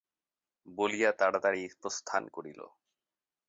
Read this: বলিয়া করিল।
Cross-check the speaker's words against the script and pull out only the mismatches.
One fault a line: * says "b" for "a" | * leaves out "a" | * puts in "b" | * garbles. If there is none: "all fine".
* puts in "তাড়াতাড়ি প্রস্থান"